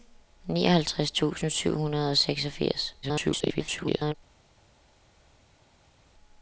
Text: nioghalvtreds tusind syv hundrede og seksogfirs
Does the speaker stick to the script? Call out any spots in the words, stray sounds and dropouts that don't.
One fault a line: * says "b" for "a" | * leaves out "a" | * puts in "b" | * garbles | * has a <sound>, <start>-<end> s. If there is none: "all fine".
* garbles